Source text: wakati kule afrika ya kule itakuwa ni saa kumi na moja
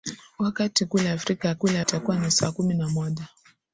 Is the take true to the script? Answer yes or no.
yes